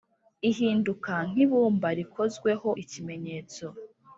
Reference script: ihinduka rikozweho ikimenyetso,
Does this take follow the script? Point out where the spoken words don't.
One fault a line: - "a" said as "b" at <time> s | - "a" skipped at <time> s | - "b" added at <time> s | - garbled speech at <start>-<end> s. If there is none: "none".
- "nk'ibumba" added at 1.3 s